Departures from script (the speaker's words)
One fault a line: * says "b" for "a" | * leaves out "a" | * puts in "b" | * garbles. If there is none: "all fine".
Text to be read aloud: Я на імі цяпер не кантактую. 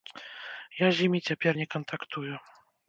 * says "з" for "на"